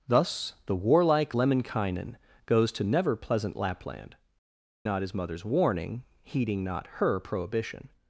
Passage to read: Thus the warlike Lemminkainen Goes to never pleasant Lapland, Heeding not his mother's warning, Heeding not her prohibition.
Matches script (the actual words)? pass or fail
fail